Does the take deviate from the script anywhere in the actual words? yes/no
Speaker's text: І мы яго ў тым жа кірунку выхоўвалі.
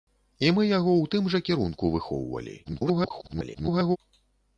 yes